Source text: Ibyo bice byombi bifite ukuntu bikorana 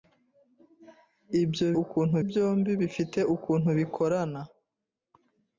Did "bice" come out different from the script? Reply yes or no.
yes